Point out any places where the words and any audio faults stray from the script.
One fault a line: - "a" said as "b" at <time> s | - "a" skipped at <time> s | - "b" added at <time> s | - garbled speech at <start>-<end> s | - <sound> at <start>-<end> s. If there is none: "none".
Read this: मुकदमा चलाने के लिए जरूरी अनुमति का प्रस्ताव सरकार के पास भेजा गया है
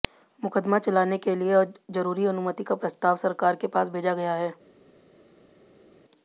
none